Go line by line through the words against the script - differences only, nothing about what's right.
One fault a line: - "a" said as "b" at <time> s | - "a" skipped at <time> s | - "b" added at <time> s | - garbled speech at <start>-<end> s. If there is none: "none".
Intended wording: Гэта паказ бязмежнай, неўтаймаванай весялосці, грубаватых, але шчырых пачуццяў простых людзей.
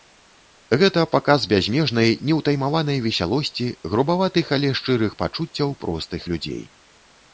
none